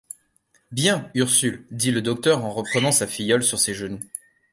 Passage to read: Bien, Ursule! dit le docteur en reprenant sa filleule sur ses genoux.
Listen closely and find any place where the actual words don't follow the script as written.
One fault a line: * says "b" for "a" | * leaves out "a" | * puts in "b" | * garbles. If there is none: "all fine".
all fine